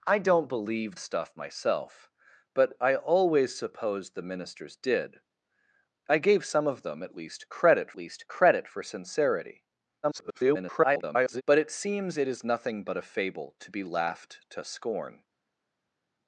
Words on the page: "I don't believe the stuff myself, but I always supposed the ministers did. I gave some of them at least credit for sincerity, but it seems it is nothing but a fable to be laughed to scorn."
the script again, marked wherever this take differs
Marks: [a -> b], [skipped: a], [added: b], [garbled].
"I don't believe [skipped: the] stuff myself, but I always supposed the ministers did. I gave some of them at least credit [added: least credit] for sincerity, [garbled] but it seems it is nothing but a fable to be laughed to scorn."